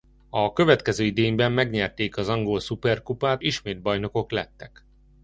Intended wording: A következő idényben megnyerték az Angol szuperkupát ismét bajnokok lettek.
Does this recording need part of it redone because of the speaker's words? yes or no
no